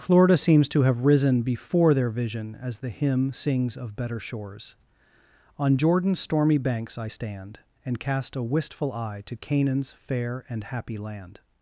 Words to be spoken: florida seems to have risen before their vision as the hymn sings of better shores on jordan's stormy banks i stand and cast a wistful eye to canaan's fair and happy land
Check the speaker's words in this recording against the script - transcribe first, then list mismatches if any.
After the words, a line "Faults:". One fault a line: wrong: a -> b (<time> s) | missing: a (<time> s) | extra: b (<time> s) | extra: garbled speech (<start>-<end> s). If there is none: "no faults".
florida seems to have risen before their vision as the hymn sings of better shores on jordan's stormy banks i stand and cast a wistful eye to canaan's fair and happy land
Faults:
no faults